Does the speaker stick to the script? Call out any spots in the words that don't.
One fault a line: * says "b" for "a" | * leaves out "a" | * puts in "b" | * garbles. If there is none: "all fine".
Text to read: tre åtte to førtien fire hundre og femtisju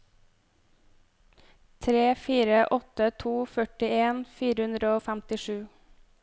* puts in "fire"